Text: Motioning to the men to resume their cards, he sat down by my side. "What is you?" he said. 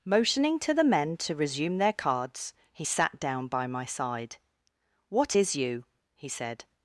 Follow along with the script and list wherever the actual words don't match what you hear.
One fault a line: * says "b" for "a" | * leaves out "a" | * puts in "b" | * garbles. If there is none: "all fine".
all fine